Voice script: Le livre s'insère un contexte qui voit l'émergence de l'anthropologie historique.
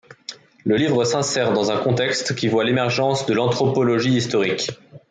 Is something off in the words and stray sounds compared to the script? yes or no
yes